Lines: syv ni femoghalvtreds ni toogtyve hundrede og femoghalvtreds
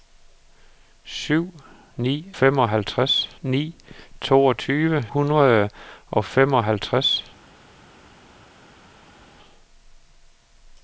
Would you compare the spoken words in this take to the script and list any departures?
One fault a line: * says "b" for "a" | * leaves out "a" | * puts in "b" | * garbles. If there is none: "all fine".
all fine